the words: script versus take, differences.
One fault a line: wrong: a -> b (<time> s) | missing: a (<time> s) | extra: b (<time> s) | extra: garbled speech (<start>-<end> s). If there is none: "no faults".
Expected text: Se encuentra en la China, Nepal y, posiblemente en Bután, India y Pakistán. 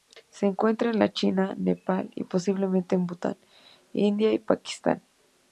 no faults